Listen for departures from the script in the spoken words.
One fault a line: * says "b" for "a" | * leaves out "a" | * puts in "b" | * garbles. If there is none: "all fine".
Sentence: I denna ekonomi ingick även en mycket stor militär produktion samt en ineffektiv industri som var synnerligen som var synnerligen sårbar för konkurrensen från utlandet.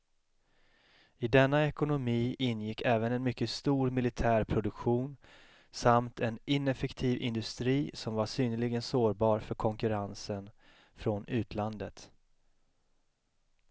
* leaves out "som var synnerligen"